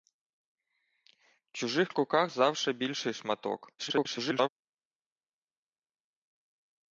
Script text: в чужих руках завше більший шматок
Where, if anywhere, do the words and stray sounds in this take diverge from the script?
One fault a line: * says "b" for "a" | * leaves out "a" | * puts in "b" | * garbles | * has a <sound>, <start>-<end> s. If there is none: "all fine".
* garbles